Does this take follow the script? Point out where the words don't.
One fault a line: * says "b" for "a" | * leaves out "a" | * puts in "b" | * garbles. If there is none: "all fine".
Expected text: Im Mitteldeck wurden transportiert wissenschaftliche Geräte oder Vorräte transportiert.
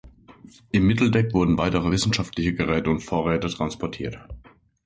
* says "weitere" for "transportiert"
* says "und" for "oder"